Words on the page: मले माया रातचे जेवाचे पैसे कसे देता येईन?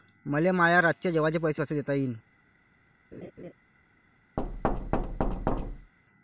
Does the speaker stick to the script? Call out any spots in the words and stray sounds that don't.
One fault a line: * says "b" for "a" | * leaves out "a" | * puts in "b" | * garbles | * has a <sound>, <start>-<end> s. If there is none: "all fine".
* has a laugh, 3.1-3.5 s
* has a thud, 4.4-5.9 s